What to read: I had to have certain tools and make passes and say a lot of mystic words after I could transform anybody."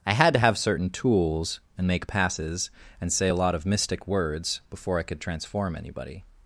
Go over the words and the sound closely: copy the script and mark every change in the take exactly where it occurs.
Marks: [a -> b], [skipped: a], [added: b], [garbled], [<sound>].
I had to have certain tools and make passes and say a lot of mystic words [after -> before] I could transform anybody."